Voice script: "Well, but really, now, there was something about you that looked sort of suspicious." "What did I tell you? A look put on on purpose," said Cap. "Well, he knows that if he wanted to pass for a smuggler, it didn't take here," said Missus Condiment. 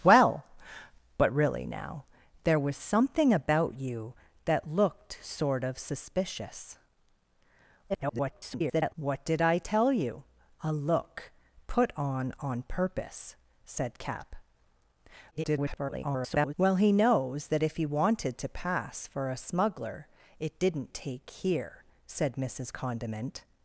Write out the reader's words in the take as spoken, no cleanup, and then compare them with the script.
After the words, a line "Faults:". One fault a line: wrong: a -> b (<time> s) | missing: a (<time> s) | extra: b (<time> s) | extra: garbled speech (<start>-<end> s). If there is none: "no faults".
"Well, but really, now, there was something about you that looked sort of suspicious." [garbled] "What did I tell you? A look put on on purpose," said Cap. [garbled] "Well, he knows that if he wanted to pass for a smuggler, it didn't take here," said Missus Condiment.
Faults:
extra: garbled speech (7.9-8.9 s)
extra: garbled speech (15.3-16.5 s)